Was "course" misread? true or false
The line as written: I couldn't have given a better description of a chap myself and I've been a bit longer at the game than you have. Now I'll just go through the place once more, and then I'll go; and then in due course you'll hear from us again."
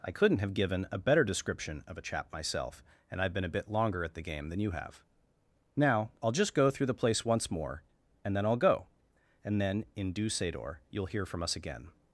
true